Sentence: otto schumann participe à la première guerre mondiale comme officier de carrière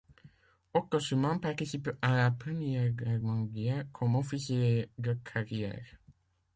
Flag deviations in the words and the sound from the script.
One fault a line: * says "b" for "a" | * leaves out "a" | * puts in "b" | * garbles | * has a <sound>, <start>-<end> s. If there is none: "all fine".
all fine